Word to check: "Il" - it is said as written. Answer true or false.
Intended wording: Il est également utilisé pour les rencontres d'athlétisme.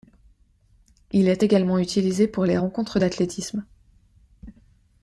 true